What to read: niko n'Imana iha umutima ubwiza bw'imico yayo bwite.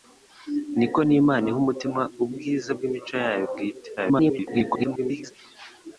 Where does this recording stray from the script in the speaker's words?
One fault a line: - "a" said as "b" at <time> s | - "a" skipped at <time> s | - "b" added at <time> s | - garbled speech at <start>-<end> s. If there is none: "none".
- garbled speech at 4.0-5.3 s